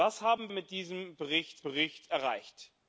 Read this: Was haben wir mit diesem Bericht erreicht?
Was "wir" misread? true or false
true